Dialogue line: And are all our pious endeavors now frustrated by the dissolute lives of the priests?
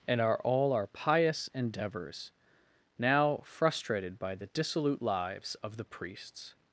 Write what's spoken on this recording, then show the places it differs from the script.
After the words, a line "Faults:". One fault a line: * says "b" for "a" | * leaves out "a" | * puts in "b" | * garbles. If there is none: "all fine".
And are all our pious endeavors now frustrated by the dissolute lives of the priests?
Faults:
all fine